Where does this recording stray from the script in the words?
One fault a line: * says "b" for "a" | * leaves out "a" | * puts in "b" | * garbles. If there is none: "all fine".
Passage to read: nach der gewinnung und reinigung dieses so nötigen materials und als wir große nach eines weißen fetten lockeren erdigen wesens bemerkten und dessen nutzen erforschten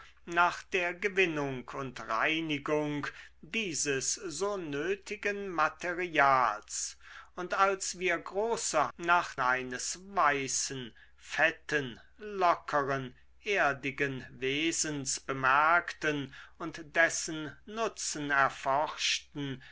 all fine